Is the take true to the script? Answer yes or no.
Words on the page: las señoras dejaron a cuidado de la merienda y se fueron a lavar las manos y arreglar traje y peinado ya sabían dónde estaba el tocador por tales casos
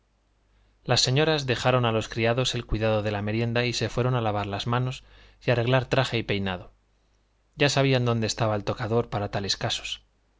no